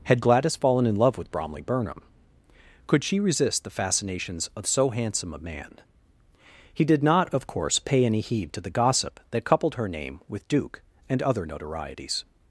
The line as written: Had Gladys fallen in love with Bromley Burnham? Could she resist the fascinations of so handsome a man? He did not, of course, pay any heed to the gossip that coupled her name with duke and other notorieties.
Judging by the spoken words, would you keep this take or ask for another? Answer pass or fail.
pass